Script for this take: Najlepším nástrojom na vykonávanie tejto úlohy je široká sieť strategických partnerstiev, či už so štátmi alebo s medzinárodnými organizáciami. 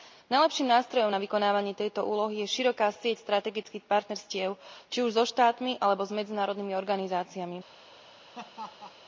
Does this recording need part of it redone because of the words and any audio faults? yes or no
yes